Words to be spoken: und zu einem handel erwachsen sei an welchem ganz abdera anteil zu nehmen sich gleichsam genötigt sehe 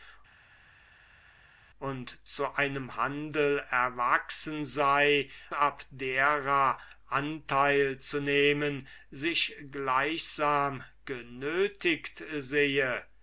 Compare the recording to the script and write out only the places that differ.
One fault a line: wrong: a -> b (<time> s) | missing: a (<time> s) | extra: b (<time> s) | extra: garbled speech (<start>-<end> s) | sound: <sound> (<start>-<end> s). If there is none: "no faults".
missing: an welchem ganz (5.3 s)